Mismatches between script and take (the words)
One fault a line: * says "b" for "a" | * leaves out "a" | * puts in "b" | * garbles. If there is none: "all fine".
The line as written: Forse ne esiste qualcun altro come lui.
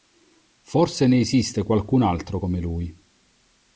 all fine